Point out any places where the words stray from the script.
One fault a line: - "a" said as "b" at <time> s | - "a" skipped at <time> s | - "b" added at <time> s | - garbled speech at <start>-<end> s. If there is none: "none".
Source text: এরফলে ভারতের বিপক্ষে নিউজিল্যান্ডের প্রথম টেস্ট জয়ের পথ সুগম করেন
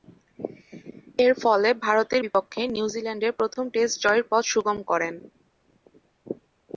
none